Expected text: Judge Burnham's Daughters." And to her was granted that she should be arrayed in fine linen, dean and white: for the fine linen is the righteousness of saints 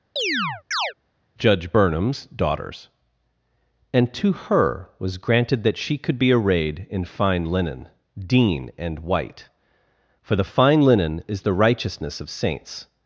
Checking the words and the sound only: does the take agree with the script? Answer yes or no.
no